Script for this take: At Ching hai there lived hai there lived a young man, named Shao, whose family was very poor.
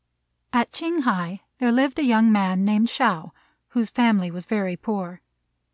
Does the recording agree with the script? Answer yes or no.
no